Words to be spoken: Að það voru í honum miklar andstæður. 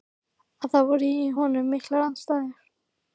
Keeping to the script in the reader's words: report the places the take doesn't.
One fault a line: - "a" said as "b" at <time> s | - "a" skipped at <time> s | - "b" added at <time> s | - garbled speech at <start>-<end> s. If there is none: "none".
none